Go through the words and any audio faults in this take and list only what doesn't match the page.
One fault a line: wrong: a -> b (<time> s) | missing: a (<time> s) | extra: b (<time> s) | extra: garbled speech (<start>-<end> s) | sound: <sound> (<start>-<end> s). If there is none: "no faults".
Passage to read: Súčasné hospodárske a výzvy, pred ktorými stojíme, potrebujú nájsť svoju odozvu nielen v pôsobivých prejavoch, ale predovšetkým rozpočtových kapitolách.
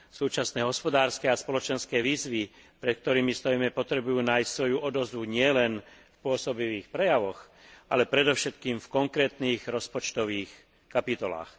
extra: spoločenské (1.4 s)
extra: v konkrétnych (8.8 s)